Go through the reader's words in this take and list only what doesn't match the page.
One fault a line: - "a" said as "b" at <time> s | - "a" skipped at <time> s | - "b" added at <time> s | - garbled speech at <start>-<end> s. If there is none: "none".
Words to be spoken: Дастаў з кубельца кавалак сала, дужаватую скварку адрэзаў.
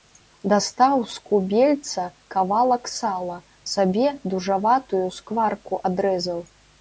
- "сабе" added at 3.7 s